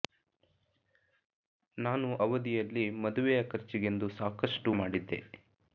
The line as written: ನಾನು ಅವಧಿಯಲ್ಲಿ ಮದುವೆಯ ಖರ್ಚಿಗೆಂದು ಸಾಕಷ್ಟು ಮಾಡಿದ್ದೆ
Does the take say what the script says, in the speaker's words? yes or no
yes